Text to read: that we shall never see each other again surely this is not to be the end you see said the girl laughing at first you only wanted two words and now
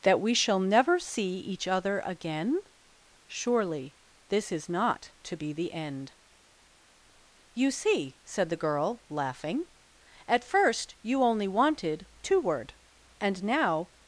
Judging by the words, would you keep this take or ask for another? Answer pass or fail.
fail